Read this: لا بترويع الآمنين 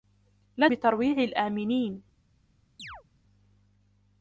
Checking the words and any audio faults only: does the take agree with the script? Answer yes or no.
no